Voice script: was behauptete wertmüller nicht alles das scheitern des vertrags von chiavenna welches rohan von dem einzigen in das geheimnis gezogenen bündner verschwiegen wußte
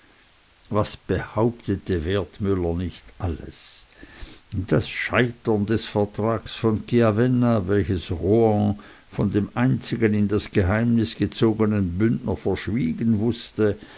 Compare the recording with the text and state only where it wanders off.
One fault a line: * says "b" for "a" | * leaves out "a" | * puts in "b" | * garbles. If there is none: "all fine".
all fine